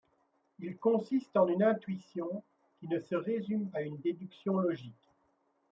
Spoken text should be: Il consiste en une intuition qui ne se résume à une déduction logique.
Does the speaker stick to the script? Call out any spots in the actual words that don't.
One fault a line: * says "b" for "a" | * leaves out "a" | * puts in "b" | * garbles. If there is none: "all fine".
all fine